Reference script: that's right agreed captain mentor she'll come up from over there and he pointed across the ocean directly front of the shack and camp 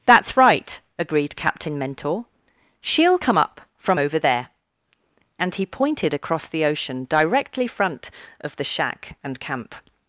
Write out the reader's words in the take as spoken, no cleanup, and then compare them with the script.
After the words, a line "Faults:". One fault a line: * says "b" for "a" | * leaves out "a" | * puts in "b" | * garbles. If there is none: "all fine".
that's right agreed captain mentor she'll come up from over there and he pointed across the ocean directly front of the shack and camp
Faults:
all fine